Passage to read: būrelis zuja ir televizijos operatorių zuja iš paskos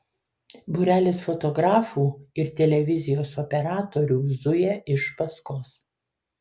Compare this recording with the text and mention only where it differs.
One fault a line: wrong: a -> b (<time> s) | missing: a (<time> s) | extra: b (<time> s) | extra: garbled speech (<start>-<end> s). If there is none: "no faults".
wrong: zuja -> fotografų (1.2 s)